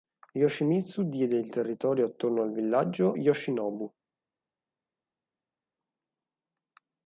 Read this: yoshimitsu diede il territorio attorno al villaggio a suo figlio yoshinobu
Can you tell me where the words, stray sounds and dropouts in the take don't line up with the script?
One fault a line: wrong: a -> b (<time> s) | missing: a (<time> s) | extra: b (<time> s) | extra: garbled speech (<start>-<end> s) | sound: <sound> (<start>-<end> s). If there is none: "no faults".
missing: a suo figlio (3.2 s)